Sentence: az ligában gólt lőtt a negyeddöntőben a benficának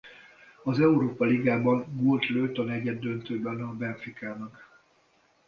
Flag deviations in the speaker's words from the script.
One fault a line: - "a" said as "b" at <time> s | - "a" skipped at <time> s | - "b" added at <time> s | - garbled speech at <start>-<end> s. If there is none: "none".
- "európa" added at 0.8 s